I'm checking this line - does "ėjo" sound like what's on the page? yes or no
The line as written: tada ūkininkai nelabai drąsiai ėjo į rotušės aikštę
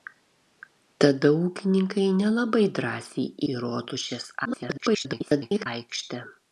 no